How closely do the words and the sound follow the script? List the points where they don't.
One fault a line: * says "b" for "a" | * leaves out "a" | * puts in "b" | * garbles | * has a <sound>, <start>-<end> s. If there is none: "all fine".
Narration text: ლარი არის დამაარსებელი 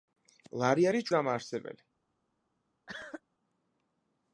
* has a cough, 2.9-3.2 s